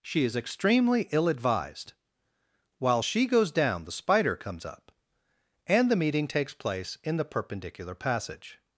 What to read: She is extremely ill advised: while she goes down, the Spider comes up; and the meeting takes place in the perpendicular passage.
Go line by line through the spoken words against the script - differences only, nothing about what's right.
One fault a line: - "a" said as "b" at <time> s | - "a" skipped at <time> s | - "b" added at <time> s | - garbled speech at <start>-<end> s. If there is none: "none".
none